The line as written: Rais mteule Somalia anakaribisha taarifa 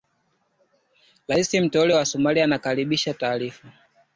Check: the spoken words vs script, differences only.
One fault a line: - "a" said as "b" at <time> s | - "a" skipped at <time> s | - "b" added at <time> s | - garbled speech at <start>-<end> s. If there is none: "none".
- "wa" added at 1.9 s